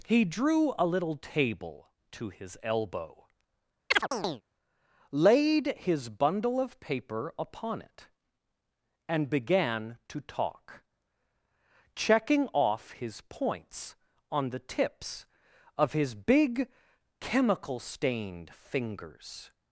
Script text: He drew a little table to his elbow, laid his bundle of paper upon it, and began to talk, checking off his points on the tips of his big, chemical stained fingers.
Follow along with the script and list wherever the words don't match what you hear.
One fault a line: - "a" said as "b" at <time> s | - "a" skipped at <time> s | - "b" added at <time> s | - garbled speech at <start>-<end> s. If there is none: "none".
none